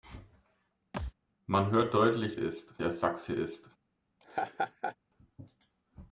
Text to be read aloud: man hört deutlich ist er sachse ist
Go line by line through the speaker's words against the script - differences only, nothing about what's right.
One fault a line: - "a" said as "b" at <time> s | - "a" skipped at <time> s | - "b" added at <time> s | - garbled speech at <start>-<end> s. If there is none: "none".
none